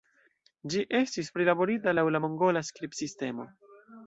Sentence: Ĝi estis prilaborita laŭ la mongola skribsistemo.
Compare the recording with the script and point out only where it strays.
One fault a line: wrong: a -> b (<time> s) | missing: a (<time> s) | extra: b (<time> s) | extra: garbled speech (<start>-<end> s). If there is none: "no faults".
no faults